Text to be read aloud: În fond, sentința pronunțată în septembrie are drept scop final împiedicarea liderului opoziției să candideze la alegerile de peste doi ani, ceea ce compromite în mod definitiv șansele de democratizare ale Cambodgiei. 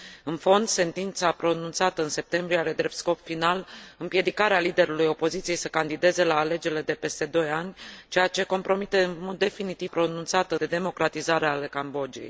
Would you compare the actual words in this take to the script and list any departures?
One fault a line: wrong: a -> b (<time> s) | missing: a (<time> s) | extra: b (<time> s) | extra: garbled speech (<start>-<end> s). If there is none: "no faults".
wrong: șansele -> pronunțată (9.8 s)